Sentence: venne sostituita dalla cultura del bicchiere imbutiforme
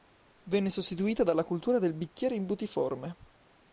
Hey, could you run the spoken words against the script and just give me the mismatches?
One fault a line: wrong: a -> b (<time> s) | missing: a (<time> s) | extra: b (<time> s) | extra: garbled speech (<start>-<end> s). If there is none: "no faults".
no faults